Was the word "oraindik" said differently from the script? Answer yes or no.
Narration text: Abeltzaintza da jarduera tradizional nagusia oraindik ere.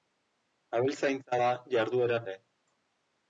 yes